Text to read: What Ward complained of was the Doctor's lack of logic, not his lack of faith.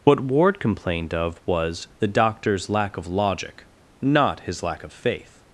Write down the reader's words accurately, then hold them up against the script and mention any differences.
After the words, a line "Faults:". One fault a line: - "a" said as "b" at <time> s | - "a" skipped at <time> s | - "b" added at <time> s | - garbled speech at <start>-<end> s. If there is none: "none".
What Ward complained of was the Doctor's lack of logic, not his lack of faith.
Faults:
none